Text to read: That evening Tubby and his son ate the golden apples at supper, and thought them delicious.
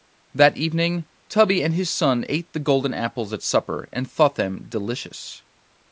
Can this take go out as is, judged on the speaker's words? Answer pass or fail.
pass